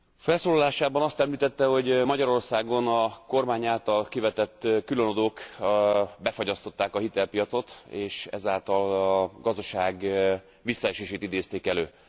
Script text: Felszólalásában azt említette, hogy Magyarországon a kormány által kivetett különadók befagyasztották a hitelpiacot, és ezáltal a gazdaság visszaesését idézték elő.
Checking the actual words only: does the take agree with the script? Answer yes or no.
yes